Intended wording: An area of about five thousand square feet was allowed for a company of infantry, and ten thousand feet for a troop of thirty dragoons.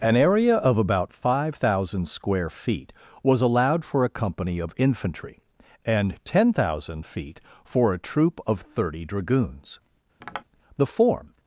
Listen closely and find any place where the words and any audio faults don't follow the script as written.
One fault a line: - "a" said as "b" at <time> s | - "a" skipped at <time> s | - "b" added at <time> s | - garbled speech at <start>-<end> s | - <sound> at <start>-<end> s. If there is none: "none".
- tap at 10.2-10.4 s
- "The form" added at 10.8 s